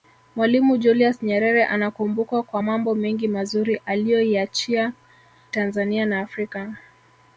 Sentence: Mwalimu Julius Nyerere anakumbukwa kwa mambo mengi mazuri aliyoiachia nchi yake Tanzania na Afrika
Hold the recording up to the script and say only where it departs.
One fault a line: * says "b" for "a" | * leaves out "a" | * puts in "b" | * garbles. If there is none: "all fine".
* leaves out "nchi yake"